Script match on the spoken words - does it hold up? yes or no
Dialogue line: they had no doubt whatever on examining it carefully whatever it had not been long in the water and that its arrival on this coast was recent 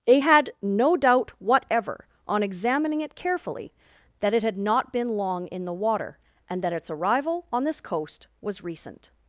no